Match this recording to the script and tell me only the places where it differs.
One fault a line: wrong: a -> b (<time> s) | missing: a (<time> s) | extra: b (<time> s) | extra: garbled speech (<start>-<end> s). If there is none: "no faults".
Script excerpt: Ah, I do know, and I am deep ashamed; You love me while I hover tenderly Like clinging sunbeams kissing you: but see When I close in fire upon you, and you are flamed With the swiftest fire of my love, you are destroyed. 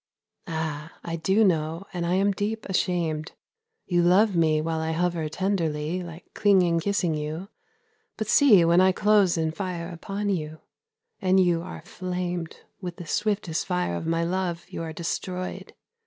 missing: sunbeams (6.8 s)